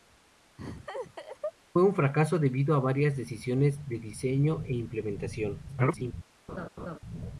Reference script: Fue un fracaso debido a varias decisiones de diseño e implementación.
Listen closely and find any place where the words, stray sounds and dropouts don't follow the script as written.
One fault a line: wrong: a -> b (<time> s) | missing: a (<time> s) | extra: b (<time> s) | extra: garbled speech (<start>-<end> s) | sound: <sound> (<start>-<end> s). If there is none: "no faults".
sound: laugh (0.6-1.5 s)
extra: garbled speech (5.7-6.1 s)
sound: laugh (6.5-7.0 s)